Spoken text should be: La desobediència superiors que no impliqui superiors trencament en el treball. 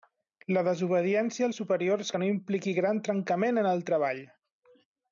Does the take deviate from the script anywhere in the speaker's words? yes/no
yes